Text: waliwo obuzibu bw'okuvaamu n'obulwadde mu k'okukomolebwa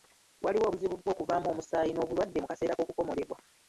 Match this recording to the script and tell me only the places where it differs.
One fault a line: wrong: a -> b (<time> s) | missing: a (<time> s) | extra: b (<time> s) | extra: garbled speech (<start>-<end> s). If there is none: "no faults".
extra: omusaayi (1.5 s)
extra: kaseera (2.5 s)